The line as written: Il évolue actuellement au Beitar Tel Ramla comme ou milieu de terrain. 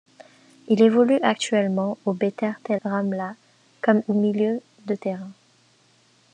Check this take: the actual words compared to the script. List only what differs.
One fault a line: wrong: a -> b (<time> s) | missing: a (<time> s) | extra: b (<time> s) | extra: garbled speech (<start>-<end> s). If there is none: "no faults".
no faults